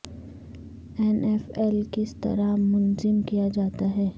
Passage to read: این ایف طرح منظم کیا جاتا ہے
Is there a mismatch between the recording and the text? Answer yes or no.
yes